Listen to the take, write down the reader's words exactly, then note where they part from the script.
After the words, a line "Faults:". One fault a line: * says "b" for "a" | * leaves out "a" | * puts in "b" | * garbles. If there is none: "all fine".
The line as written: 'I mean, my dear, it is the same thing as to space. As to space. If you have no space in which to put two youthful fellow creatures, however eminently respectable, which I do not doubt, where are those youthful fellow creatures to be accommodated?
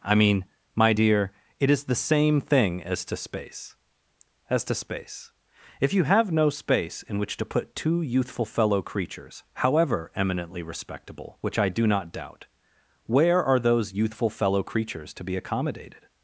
'I mean, my dear, it is the same thing as to space. As to space. If you have no space in which to put two youthful fellow creatures, however eminently respectable, which I do not doubt, where are those youthful fellow creatures to be accommodated?
Faults:
all fine